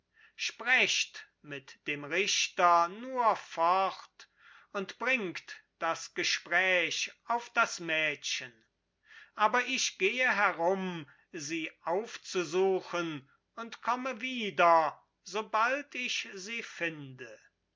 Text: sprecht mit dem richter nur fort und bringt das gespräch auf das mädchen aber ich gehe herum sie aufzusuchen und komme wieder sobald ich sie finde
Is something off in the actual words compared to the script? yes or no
no